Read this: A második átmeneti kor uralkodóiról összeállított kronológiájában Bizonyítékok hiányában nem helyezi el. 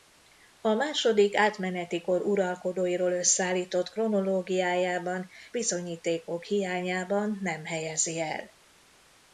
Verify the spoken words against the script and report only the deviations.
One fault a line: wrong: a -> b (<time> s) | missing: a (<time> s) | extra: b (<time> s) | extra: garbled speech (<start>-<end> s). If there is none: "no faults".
no faults